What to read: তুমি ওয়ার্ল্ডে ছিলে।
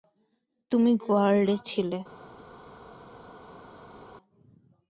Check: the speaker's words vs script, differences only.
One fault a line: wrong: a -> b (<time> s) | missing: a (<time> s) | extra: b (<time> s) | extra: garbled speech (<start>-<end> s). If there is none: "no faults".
no faults